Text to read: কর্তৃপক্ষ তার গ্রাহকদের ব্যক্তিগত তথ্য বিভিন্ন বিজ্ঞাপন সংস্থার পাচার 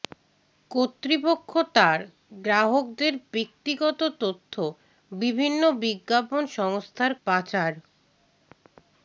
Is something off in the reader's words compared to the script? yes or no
no